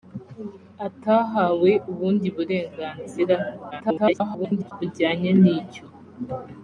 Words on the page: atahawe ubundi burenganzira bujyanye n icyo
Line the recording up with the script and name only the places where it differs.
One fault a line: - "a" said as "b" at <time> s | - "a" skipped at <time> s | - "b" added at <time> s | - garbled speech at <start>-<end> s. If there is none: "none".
- garbled speech at 3.7-4.7 s